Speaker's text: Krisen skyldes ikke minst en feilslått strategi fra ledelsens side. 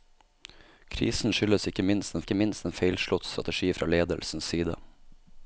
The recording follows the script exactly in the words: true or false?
false